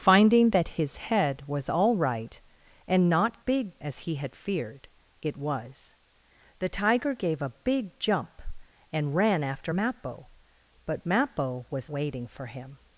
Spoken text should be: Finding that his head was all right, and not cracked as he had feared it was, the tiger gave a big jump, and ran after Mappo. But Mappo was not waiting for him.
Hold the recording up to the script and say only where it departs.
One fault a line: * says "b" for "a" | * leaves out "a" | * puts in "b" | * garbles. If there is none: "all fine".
* says "big" for "cracked"
* leaves out "not"